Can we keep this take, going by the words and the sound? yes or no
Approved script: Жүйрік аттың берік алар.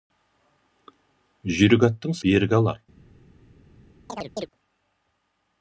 no